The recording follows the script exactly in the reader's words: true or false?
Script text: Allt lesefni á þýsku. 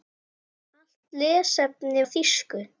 true